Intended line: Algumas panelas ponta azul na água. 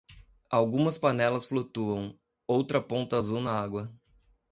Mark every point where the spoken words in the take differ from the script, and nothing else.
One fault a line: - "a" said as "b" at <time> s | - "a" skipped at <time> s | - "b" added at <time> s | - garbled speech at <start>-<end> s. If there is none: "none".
- "flutuam outra" added at 1.4 s